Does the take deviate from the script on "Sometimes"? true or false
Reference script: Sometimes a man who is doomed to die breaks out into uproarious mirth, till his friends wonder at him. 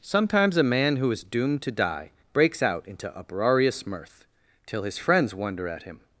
false